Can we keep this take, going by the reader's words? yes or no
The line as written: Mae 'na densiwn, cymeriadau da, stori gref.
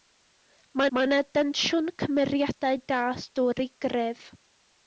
no